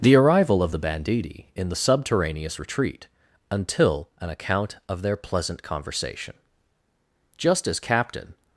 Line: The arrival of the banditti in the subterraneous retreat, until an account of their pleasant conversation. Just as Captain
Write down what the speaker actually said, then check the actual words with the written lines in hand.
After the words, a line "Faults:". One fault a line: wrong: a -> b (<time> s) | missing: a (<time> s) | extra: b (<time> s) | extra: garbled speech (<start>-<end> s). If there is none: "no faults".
The arrival of the banditti in the subterraneous retreat, until an account of their pleasant conversation. Just as Captain
Faults:
no faults